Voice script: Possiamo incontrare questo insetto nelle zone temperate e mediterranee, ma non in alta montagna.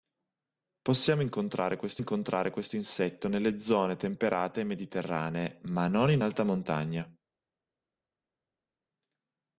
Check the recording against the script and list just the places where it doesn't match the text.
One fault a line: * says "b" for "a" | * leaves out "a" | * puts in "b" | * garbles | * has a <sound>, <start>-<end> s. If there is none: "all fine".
* puts in "incontrare questo"